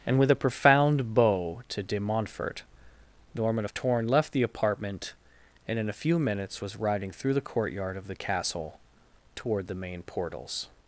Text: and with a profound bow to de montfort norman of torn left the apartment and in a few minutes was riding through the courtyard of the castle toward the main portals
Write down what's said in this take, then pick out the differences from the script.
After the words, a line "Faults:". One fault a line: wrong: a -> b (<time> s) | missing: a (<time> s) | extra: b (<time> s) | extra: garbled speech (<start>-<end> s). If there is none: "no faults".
and with a profound bow to de montfort norman of torn left the apartment and in a few minutes was riding through the courtyard of the castle toward the main portals
Faults:
no faults